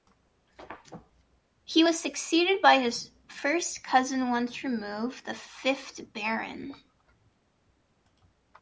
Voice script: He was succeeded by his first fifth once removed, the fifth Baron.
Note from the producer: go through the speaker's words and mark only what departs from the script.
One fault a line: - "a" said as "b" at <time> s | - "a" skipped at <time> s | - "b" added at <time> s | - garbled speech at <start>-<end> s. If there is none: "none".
- "fifth" said as "cousin" at 3.8 s